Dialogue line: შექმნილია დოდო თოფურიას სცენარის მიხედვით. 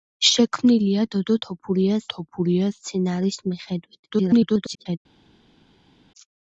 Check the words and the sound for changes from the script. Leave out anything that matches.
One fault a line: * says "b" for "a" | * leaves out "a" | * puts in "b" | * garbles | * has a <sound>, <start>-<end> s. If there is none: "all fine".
* puts in "თოფურიას"
* garbles